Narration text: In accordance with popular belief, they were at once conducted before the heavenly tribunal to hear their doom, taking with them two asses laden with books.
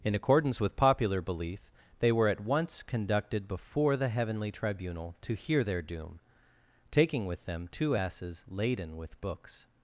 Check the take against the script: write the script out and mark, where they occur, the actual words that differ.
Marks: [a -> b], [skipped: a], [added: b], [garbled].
In accordance with popular belief, they were at once conducted before the heavenly tribunal to hear their doom, taking with them two asses laden with books.